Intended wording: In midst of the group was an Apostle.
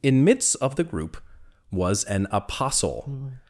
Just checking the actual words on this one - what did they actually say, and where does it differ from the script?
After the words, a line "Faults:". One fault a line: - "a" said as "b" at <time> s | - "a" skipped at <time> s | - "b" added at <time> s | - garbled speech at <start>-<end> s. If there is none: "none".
In midst of the group was an Apostle.
Faults:
none